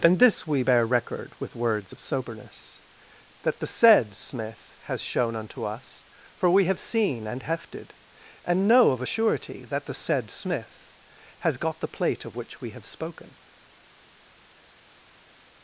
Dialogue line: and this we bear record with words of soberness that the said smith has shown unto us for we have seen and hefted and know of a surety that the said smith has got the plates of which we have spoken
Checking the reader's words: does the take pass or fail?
fail